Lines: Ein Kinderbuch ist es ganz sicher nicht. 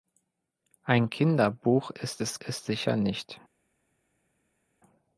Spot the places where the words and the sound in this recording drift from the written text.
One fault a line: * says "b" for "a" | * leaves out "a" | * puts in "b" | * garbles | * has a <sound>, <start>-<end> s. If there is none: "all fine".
* says "ist" for "ganz"